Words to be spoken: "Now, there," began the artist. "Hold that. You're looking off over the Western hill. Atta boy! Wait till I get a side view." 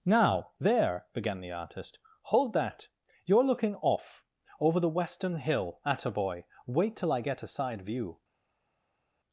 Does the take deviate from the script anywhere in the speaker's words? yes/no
no